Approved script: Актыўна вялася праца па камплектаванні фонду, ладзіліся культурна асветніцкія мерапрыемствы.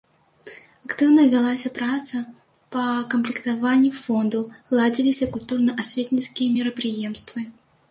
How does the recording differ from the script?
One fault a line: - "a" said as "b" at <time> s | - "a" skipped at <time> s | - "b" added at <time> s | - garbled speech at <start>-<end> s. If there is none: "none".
none